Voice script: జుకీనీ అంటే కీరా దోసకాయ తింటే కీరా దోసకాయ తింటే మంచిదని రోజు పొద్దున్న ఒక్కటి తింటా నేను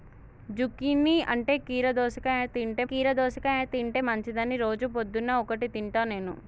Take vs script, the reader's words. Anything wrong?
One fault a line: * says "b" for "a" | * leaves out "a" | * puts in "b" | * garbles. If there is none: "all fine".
all fine